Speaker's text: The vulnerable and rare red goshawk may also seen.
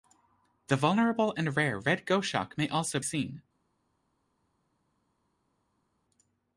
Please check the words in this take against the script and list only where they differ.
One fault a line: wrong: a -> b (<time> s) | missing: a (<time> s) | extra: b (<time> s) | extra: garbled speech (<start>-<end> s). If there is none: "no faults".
no faults